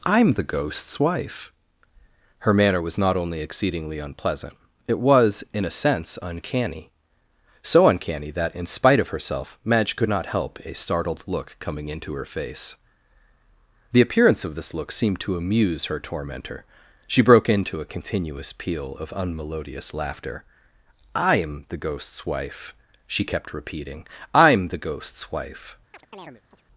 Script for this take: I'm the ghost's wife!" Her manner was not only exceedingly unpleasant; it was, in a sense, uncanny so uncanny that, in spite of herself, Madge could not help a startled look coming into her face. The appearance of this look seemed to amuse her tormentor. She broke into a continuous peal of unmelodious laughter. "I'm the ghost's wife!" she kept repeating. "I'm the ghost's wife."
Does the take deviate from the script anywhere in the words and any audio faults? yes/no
yes